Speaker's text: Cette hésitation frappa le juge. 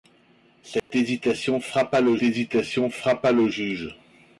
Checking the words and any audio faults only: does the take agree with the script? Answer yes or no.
no